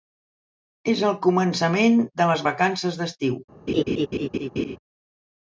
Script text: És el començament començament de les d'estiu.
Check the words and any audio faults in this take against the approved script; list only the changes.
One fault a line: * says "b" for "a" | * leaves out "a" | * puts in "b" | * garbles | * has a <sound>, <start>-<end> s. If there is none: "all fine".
* leaves out "començament"
* puts in "vacances"
* has a laugh, 3.7-4.8 s